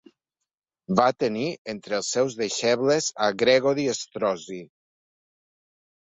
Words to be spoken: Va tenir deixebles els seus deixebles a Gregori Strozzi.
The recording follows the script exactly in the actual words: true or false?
false